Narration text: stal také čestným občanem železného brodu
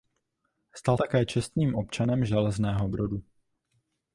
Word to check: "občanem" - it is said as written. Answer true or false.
true